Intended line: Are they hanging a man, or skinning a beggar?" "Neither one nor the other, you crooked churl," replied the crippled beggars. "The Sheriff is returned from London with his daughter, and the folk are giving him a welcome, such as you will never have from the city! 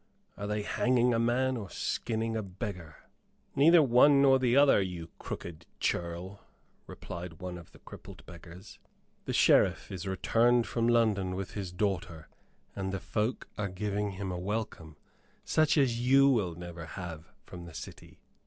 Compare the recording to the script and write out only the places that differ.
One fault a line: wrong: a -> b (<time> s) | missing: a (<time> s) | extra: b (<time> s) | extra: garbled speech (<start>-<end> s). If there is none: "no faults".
extra: one of (7.4 s)